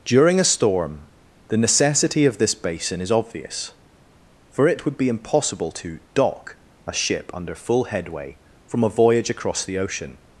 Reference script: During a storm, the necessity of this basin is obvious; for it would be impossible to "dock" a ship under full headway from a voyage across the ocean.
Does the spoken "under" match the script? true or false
true